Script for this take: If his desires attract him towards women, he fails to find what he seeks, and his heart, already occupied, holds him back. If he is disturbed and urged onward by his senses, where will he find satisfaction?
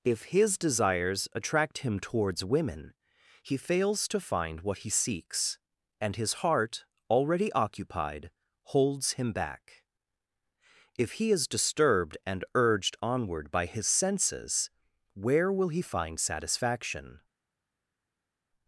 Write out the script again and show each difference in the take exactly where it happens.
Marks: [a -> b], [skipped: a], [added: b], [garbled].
If his desires attract him towards women, he fails to find what he seeks, and his heart, already occupied, holds him back. If he is disturbed and urged onward by his senses, where will he find satisfaction?